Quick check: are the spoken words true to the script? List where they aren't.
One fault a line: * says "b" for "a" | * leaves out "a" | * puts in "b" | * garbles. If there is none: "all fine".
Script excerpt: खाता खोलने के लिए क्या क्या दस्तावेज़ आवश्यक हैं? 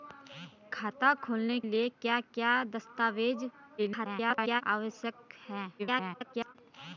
* leaves out "के"
* garbles
* garbles